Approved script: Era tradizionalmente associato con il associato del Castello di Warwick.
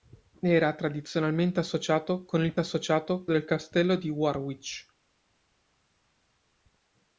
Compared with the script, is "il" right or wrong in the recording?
right